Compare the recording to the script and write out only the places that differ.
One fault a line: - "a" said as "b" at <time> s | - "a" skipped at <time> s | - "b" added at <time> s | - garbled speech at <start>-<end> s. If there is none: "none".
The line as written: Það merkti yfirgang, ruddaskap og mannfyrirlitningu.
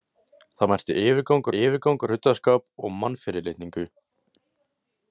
- "yfirgang" added at 1.6 s